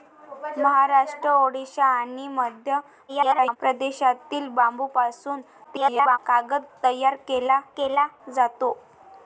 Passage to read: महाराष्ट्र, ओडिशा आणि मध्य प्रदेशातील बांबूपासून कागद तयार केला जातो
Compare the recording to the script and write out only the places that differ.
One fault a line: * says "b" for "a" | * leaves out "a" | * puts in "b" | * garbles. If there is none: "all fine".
* garbles
* garbles
* puts in "केला"